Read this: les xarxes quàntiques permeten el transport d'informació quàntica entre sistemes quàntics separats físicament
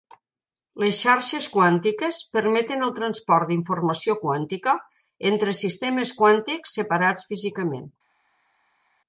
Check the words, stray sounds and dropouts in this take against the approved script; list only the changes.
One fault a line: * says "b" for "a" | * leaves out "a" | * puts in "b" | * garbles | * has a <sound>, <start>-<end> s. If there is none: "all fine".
all fine